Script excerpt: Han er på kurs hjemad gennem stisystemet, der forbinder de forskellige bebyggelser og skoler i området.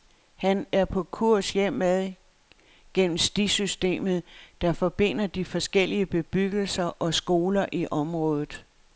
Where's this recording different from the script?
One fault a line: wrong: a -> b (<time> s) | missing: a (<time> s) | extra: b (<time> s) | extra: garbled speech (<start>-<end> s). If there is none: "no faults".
no faults